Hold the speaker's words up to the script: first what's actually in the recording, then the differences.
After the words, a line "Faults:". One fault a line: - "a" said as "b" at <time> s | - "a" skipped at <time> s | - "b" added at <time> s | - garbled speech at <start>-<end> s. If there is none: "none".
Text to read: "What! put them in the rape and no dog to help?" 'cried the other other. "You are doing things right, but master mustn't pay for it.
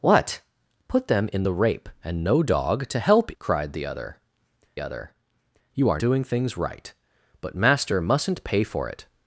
"What! put them in the rape and no dog to help?" 'cried the other other. "You are doing things right, but master mustn't pay for it.
Faults:
none